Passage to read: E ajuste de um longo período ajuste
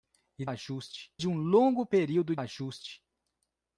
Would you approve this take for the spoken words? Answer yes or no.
yes